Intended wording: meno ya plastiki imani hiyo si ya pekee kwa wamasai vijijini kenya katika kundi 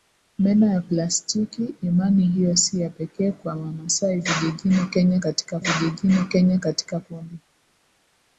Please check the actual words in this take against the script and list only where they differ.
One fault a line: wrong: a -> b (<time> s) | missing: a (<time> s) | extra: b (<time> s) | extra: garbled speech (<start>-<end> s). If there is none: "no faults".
extra: vijijini kenya katika (5.6 s)